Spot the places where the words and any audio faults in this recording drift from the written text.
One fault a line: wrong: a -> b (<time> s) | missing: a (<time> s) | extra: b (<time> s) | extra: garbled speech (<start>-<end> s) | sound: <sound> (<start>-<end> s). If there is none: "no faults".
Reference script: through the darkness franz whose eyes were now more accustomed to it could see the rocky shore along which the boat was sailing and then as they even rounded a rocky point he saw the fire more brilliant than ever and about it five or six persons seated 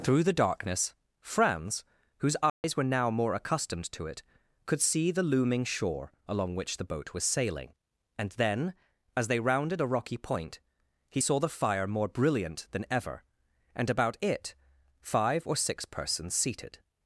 sound: dropout (2.5-2.6 s)
wrong: rocky -> looming (5.2 s)
missing: even (9.4 s)